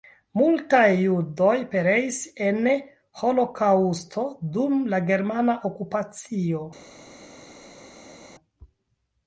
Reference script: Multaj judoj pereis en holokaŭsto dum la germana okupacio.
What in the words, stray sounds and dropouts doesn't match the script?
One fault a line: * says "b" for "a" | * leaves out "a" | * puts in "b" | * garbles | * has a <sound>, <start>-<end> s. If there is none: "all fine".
all fine